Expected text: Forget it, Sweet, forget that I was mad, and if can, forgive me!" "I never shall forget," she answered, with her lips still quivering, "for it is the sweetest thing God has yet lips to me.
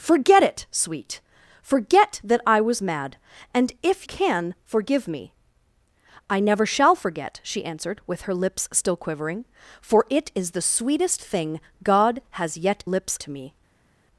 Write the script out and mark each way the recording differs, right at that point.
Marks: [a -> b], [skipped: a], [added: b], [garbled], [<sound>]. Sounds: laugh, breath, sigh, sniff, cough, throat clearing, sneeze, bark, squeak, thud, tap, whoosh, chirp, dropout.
Forget it, Sweet, forget that I was mad, and if can, forgive me!" "I never shall forget," she answered, with her lips still quivering, "for it is the sweetest thing God has yet lips to me.